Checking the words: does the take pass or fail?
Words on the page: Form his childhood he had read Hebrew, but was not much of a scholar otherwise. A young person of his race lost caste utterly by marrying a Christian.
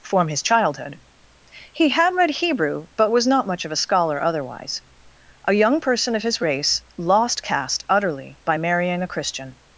pass